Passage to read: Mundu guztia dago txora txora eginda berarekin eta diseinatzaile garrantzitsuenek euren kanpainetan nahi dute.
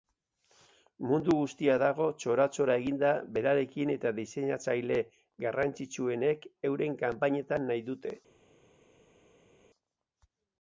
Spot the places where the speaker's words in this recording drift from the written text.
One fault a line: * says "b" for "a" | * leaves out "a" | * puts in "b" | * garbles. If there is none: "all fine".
all fine